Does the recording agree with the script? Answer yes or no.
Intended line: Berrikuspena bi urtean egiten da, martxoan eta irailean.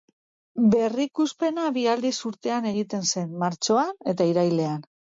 no